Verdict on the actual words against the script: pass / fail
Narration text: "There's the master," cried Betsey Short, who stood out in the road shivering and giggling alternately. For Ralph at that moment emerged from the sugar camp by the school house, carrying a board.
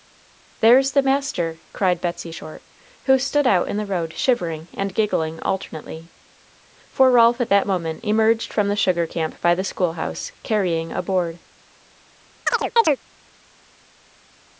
pass